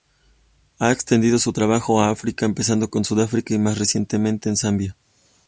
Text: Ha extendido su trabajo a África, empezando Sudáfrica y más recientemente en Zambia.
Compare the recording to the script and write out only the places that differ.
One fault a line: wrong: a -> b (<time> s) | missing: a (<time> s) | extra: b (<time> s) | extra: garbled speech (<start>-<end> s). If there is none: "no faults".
extra: con (2.9 s)